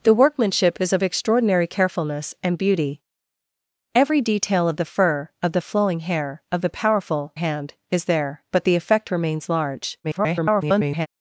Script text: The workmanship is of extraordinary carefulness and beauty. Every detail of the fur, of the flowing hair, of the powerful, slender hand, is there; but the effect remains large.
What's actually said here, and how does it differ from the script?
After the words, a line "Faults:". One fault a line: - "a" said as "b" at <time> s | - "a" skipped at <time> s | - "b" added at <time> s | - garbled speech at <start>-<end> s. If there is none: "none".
The workmanship is of extraordinary carefulness and beauty. Every detail of the fur, of the flowing hair, of the powerful, hand, is there; but the effect remains large. [garbled]
Faults:
- "slender" skipped at 7.3 s
- garbled speech at 10.0-11.1 s